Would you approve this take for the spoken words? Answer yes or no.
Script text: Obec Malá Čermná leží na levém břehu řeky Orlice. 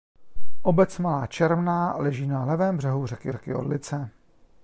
no